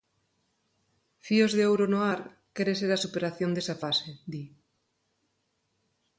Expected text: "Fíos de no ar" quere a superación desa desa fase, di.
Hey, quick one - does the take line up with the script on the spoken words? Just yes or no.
no